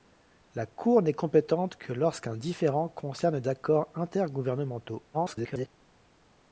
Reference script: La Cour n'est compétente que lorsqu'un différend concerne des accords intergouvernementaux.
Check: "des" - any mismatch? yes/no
yes